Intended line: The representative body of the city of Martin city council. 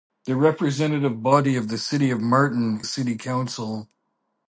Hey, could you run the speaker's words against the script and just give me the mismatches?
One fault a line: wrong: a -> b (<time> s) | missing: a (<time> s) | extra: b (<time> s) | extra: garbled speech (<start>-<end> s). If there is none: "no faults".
no faults